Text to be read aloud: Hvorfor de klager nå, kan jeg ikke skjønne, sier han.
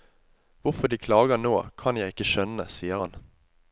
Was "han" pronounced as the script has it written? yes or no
yes